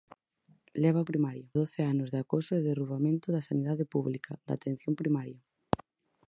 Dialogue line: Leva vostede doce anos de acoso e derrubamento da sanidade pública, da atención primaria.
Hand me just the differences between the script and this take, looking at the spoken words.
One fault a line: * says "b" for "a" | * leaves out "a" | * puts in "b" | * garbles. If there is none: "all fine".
* says "primaria" for "vostede"